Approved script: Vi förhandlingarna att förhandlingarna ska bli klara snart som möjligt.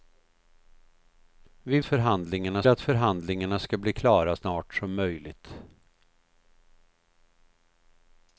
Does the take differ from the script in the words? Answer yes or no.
no